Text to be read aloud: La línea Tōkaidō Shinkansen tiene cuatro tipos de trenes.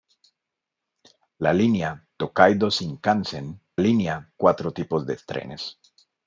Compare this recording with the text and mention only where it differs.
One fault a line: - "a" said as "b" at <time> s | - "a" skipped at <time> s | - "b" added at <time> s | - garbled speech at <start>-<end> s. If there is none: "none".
- "tiene" said as "línea" at 3.8 s